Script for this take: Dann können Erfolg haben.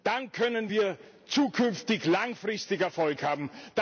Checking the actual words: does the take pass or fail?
fail